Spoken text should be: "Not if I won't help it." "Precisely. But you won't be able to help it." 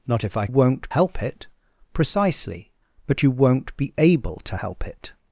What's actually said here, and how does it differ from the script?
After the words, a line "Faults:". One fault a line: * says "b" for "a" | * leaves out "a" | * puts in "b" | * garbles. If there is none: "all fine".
"Not if I won't help it." "Precisely. But you won't be able to help it."
Faults:
all fine